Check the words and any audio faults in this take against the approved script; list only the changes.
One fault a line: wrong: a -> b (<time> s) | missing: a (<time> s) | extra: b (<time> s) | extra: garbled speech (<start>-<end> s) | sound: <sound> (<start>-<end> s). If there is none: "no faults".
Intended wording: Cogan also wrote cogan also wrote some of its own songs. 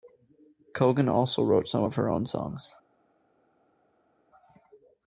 missing: cogan also wrote (1.7 s)
wrong: its -> her (2.0 s)